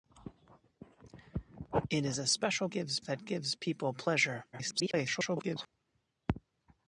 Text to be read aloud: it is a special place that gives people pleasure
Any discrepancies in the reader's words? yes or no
yes